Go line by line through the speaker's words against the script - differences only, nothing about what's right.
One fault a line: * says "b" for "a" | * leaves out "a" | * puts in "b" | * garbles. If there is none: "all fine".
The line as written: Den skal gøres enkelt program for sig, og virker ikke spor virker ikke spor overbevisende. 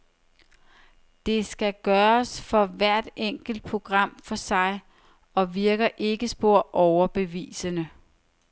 * says "Det" for "Den"
* puts in "for hvert"
* leaves out "virker ikke spor"